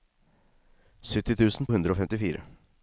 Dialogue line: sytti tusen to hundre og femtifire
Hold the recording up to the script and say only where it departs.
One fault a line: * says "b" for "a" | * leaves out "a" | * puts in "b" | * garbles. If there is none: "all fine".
* leaves out "to"